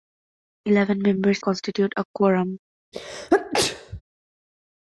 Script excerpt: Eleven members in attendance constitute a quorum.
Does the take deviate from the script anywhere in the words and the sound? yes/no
yes